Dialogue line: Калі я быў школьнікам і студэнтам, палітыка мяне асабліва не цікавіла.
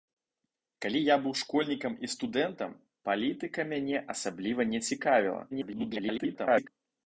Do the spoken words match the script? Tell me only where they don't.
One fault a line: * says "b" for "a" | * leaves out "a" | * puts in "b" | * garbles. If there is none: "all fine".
* garbles